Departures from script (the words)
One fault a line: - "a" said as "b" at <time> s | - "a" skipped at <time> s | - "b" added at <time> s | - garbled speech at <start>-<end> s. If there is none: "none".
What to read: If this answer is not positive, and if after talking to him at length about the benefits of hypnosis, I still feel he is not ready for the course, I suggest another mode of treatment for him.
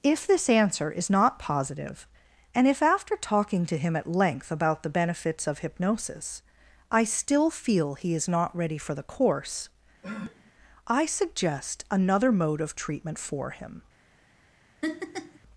none